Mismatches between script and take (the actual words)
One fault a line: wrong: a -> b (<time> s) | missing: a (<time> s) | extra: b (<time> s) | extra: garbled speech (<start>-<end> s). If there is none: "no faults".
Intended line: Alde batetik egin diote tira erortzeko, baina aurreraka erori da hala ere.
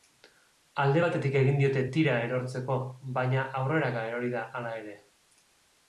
no faults